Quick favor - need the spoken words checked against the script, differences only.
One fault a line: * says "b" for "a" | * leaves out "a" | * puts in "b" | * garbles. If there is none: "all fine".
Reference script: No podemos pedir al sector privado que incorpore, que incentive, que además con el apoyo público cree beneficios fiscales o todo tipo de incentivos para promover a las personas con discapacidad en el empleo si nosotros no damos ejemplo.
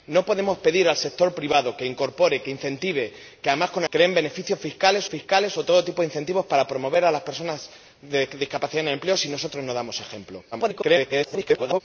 * leaves out "apoyo público"
* puts in "fiscales"
* garbles